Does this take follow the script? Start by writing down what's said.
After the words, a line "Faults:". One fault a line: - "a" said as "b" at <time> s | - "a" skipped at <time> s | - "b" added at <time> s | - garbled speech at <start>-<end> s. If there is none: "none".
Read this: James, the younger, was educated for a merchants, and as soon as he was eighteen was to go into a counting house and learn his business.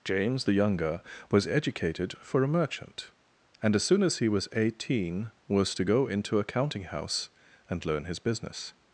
James, the younger, was educated for a merchant, and as soon as he was eighteen was to go into a counting house and learn his business.
Faults:
- "merchants" said as "merchant" at 2.5 s